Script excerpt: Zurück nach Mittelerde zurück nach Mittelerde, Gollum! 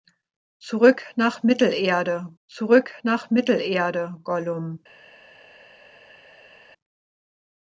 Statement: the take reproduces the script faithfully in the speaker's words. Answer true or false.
true